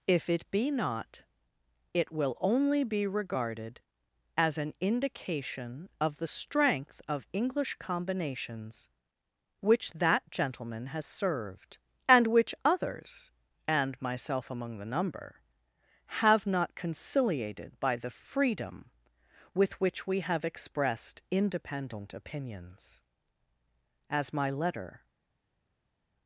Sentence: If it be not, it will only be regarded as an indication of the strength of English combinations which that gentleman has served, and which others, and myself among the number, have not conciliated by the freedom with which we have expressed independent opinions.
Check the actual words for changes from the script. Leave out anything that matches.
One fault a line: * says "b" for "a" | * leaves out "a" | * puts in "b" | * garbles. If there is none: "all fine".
* puts in "As my letter"